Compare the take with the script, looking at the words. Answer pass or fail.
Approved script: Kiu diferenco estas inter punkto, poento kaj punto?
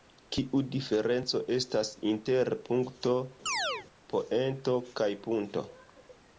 pass